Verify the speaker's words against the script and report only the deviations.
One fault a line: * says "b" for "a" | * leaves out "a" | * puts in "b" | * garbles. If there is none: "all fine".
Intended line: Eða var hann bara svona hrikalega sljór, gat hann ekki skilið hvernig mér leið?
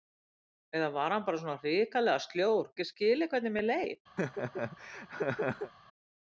* leaves out "gat hann"